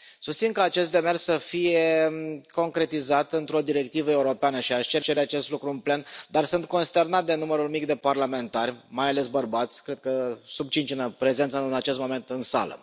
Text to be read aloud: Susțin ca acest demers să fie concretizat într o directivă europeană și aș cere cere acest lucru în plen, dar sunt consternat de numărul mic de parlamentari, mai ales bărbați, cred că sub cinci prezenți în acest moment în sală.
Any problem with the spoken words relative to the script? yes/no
no